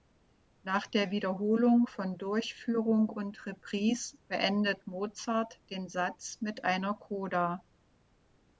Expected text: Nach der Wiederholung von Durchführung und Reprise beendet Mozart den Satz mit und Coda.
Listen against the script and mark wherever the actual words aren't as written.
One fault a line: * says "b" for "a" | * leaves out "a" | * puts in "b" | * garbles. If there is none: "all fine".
* says "einer" for "und"